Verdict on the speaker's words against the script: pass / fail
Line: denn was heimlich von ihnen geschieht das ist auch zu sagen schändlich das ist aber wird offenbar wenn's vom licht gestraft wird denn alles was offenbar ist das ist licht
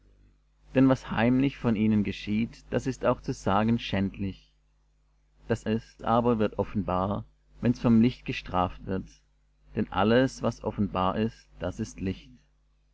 pass